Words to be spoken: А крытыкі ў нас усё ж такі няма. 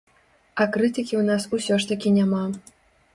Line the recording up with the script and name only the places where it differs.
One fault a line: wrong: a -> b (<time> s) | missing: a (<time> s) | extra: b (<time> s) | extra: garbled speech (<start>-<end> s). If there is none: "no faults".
no faults